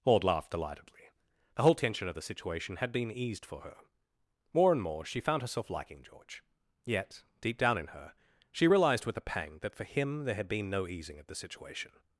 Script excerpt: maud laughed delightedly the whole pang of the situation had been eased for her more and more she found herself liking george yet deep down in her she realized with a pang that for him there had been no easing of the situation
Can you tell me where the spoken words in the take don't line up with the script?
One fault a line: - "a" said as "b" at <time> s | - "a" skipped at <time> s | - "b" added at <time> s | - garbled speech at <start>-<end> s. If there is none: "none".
- "pang" said as "tension" at 1.8 s